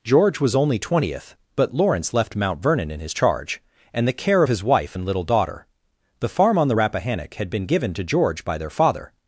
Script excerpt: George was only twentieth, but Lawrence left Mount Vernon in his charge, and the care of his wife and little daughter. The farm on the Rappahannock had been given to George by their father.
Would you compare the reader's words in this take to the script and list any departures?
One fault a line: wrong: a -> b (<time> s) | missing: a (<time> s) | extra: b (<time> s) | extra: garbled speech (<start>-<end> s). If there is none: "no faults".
no faults